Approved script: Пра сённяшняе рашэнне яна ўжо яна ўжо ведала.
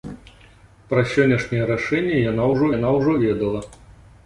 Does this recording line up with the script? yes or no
yes